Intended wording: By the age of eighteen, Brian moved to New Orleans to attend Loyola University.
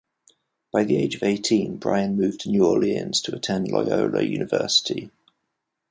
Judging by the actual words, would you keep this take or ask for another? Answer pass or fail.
pass